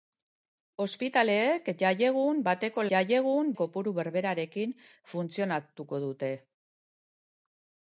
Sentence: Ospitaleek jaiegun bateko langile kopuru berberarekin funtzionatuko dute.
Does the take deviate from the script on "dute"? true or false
false